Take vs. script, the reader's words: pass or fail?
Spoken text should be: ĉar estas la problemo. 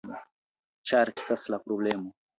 pass